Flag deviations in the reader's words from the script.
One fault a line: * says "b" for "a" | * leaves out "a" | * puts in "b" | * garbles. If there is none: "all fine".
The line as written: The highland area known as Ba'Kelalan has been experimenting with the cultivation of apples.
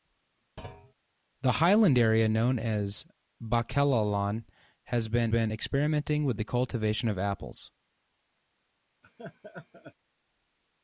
* puts in "been"